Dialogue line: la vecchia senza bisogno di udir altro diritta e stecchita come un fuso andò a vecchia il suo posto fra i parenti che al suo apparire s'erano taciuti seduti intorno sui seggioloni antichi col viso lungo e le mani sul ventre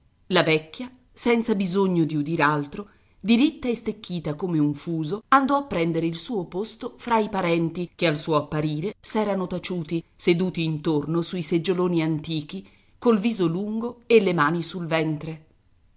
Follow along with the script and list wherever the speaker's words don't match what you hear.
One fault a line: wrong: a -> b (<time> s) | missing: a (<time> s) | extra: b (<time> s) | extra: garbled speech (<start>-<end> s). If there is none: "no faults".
wrong: vecchia -> prendere (5.7 s)